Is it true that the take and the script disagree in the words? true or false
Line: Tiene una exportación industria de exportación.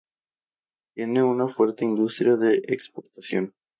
true